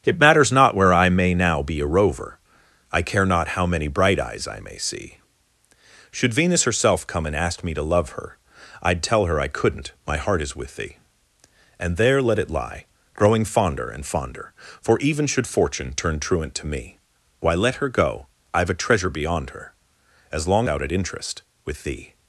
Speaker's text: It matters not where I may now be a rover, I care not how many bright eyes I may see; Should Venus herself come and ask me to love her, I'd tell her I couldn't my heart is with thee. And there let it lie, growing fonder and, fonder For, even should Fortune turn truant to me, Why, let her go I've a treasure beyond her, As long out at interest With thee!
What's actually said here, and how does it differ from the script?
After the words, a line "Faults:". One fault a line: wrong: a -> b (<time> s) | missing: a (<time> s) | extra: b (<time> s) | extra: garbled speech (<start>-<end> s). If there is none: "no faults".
It matters not where I may now be a rover, I care not how many bright eyes I may see; Should Venus herself come and ask me to love her, I'd tell her I couldn't my heart is with thee. And there let it lie, growing fonder and, fonder For, even should Fortune turn truant to me, Why, let her go I've a treasure beyond her, As long out at interest With thee!
Faults:
no faults